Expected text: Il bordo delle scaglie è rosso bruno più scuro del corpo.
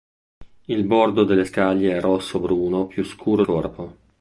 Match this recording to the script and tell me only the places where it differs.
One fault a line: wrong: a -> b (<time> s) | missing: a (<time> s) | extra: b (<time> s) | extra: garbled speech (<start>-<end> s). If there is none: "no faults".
missing: del (3.4 s)